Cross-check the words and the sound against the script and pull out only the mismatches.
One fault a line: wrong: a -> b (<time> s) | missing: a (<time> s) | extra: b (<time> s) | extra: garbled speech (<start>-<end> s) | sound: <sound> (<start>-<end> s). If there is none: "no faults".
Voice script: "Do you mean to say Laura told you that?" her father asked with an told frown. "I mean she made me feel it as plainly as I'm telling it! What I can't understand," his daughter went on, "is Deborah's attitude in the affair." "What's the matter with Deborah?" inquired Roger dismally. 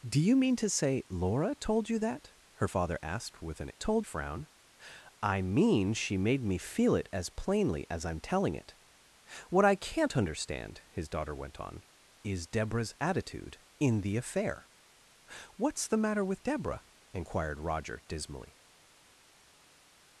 no faults